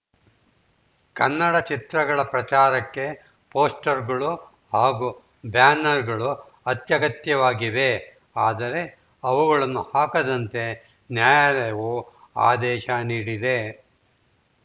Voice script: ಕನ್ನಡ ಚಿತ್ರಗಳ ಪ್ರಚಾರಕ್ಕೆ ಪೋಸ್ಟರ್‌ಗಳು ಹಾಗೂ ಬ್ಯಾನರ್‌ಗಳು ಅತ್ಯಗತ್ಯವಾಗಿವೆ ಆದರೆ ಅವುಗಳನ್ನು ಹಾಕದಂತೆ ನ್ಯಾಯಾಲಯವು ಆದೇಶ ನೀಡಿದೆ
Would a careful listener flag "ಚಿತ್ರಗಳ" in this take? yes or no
no